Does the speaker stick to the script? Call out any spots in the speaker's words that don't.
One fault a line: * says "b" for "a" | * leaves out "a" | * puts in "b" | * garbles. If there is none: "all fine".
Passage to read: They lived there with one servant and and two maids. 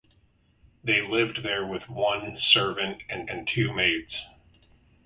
all fine